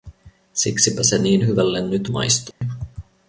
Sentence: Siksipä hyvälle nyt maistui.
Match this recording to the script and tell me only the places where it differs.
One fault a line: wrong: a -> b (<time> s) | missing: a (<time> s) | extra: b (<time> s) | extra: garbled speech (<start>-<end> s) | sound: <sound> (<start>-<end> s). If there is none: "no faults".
extra: se niin (1.0 s)
sound: dropout (2.5-2.6 s)